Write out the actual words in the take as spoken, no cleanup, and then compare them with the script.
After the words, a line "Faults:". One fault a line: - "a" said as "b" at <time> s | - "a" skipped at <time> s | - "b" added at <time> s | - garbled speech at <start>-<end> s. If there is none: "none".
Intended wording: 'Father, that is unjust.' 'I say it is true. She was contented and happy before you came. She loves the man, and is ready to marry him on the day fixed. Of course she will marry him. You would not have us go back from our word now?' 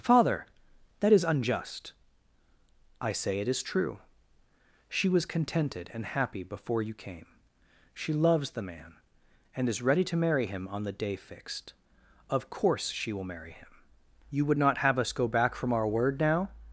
'Father, that is unjust.' 'I say it is true. She was contented and happy before you came. She loves the man, and is ready to marry him on the day fixed. Of course she will marry him. You would not have us go back from our word now?'
Faults:
none